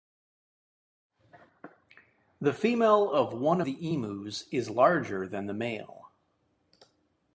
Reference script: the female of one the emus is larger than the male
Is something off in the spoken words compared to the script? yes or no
no